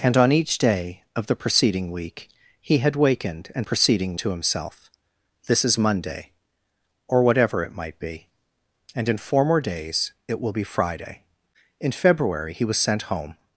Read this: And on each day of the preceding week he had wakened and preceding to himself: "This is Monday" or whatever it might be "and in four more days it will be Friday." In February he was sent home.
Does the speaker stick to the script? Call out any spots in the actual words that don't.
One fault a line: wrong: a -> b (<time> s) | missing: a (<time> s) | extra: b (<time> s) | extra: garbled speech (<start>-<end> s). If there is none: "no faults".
no faults